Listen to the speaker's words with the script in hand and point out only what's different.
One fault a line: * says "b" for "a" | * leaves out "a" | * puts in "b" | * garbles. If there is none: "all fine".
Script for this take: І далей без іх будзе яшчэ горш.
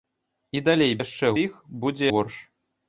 * says "яшчэ" for "без"
* leaves out "яшчэ"